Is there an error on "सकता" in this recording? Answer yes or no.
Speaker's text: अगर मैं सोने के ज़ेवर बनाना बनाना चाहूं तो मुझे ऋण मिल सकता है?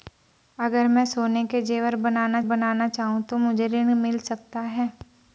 no